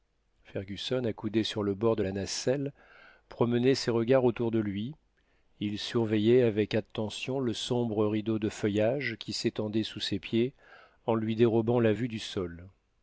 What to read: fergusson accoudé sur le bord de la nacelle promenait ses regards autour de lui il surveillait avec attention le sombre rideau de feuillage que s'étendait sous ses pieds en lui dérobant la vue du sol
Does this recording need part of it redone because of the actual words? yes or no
yes